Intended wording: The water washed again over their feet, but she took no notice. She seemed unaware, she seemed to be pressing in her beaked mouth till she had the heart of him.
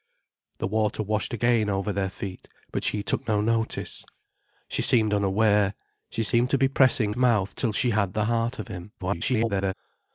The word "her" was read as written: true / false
false